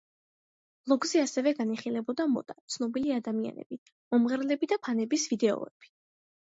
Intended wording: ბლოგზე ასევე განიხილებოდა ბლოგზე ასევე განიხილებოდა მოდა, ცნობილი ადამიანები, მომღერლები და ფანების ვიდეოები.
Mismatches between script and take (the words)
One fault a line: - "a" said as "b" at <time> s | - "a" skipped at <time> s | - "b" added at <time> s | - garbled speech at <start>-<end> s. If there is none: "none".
- "ბლოგზე ასევე განიხილებოდა" skipped at 2.3 s